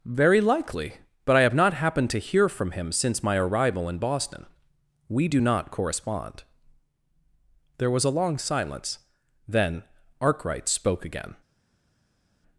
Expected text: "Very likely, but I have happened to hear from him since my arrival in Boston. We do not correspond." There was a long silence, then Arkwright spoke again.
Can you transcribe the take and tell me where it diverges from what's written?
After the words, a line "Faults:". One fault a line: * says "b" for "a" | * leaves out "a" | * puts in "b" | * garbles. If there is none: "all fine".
"Very likely, but I have not happened to hear from him since my arrival in Boston. We do not correspond." There was a long silence, then Arkwright spoke again.
Faults:
* puts in "not"